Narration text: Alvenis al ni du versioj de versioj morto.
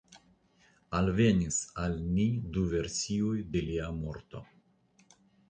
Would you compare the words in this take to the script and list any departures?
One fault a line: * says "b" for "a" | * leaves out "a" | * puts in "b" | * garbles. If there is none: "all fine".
* says "lia" for "versioj"